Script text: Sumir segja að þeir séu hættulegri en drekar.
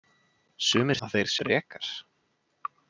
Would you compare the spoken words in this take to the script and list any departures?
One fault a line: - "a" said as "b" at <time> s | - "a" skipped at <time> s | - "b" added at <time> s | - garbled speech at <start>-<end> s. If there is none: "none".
- "segja" skipped at 1.0 s
- "séu hættulegri en" skipped at 1.3 s